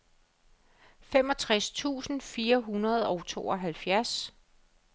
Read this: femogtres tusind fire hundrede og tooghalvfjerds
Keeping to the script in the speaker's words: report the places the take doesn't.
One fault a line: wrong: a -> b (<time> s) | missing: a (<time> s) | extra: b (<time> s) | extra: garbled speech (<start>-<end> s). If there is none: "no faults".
no faults